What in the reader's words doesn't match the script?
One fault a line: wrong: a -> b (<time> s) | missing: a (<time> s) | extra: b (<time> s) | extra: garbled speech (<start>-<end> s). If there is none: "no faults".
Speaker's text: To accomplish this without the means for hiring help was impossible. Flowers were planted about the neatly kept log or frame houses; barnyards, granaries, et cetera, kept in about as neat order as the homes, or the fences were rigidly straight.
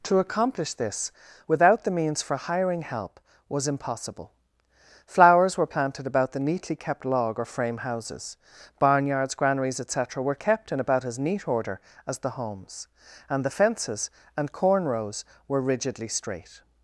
extra: were (10.2 s)
wrong: or -> and (13.3 s)
extra: and corn rows (14.3 s)